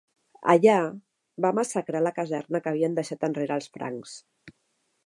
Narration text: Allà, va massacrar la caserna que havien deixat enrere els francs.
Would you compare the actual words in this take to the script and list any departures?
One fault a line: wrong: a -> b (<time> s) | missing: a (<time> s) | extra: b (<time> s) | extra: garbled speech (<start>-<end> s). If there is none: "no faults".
no faults